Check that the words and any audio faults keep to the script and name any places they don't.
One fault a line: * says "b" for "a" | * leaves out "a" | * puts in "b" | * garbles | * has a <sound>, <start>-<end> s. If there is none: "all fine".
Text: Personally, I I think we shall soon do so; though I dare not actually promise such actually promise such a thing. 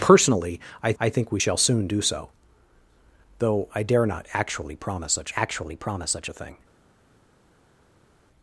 all fine